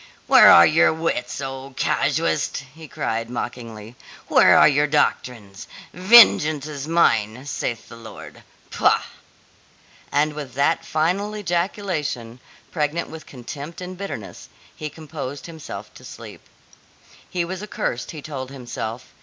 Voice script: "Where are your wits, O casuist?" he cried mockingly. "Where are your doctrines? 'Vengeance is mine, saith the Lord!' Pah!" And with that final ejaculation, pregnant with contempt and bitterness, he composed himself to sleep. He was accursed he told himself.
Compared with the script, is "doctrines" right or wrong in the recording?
right